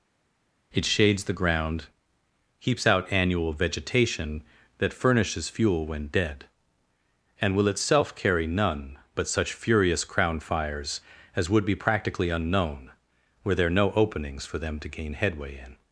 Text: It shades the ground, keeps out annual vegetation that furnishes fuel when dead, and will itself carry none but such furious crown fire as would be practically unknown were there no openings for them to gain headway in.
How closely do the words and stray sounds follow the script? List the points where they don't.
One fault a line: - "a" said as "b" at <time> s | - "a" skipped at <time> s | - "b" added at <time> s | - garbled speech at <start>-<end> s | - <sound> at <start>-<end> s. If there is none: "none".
- "fire" said as "fires" at 10.4 s